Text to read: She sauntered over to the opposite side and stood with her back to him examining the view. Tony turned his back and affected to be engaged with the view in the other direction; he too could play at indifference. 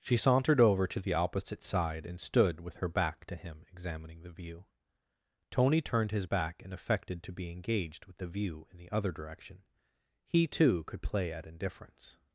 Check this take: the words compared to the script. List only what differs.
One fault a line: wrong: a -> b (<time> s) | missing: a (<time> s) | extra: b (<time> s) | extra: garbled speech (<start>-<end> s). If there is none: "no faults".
no faults